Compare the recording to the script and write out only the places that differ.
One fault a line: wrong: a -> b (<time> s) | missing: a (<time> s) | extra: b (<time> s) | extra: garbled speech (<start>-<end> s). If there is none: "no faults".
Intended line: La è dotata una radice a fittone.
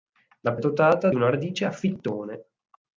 no faults